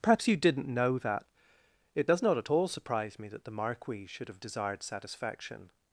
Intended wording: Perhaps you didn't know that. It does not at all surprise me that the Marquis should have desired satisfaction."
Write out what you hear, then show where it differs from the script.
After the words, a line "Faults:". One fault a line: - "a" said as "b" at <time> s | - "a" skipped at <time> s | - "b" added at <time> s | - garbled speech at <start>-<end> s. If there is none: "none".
Perhaps you didn't know that. It does not at all surprise me that the Marquis should have desired satisfaction."
Faults:
none